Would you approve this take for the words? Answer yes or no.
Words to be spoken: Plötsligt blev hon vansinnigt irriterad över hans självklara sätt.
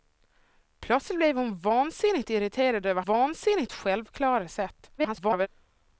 no